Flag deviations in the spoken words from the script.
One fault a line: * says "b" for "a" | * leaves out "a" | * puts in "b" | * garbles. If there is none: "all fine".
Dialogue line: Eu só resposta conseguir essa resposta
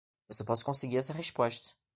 * says "posso" for "resposta"